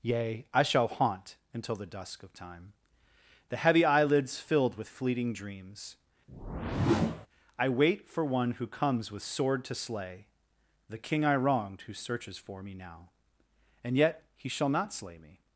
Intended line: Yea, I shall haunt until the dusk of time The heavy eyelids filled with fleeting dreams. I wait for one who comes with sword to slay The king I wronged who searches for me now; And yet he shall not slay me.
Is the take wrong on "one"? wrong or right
right